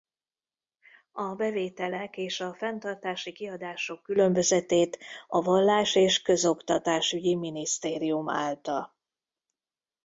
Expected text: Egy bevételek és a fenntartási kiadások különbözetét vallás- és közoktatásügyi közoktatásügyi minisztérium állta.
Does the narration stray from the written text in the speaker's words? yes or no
yes